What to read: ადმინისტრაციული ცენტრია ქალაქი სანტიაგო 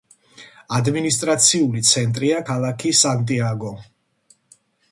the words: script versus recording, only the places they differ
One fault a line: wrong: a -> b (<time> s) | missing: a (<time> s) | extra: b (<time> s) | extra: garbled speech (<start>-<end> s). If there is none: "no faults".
no faults